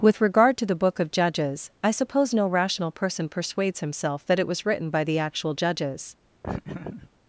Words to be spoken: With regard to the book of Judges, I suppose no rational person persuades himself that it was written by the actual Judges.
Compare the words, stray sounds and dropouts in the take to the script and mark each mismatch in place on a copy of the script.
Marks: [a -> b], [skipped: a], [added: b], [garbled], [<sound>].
With regard to the book of Judges, I suppose no rational person persuades himself that it was written by the actual Judges. [laugh]